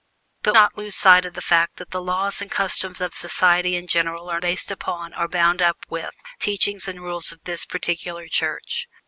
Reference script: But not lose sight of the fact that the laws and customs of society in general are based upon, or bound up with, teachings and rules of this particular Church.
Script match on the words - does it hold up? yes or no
yes